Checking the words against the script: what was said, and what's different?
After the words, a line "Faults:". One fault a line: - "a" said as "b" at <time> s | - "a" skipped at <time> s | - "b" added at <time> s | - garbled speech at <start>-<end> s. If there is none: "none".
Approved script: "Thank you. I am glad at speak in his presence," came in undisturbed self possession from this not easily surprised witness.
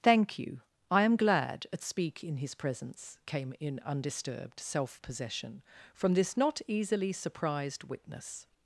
"Thank you. I am glad at speak in his presence," came in undisturbed self possession from this not easily surprised witness.
Faults:
none